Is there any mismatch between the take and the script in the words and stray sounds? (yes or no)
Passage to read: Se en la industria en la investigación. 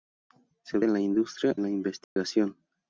yes